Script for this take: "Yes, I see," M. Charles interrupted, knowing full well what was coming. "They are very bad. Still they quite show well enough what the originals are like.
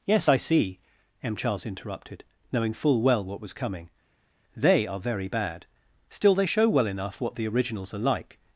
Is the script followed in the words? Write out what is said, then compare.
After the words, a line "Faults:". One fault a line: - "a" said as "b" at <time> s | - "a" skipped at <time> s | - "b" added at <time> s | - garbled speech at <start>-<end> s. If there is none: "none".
"Yes, I see," M. Charles interrupted, knowing full well what was coming. "They are very bad. Still they show well enough what the originals are like.
Faults:
- "quite" skipped at 6.5 s